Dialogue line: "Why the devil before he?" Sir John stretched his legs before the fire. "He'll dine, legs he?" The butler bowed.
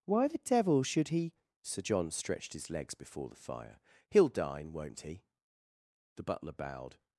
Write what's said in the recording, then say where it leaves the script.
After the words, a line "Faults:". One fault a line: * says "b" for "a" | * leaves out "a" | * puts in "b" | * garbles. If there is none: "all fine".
"Why the devil should he?" Sir John stretched his legs before the fire. "He'll dine, won't he?" The butler bowed.
Faults:
* says "should" for "before"
* says "won't" for "legs"